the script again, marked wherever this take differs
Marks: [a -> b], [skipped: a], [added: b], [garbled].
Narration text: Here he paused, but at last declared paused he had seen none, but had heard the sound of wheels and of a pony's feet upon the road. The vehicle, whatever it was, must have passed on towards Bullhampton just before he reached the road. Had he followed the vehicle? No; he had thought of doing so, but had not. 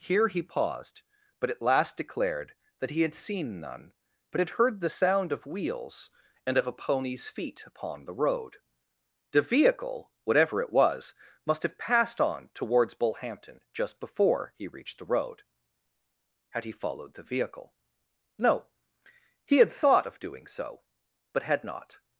Here he paused, but at last declared [paused -> that] he had seen none, but had heard the sound of wheels and of a pony's feet upon the road. The vehicle, whatever it was, must have passed on towards Bullhampton just before he reached the road. Had he followed the vehicle? No; he had thought of doing so, but had not.